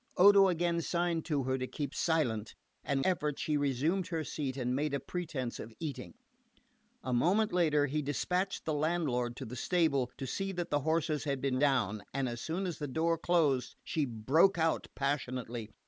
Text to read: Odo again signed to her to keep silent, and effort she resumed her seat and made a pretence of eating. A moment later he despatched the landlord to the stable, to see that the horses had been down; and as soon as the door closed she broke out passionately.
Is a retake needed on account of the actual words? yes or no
no